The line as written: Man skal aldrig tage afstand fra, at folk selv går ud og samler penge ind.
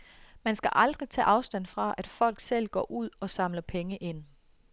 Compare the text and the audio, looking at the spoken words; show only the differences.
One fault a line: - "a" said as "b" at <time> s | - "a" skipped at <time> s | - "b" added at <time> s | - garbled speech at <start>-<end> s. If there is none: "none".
none